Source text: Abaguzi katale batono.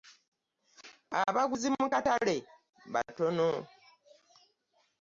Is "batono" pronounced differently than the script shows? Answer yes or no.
no